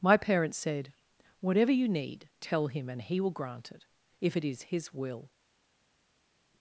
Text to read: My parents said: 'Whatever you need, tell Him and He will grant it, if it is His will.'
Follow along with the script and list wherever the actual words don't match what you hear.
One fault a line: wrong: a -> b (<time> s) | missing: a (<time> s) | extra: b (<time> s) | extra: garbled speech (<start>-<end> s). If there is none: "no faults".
no faults